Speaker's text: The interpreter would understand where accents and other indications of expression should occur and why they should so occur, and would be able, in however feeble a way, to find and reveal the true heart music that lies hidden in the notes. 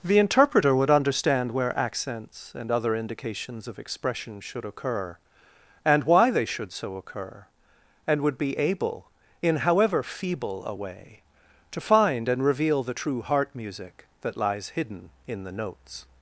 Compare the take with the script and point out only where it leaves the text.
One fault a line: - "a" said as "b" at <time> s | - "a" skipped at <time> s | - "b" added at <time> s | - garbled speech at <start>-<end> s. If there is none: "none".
none